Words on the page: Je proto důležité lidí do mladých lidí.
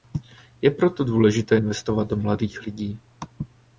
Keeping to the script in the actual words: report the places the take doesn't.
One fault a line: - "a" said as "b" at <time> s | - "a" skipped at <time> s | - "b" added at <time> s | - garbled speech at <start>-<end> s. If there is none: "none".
- "lidí" said as "investovat" at 1.6 s